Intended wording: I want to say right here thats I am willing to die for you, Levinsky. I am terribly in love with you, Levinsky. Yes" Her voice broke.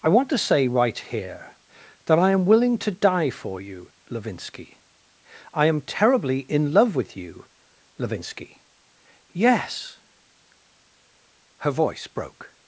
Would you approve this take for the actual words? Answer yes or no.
no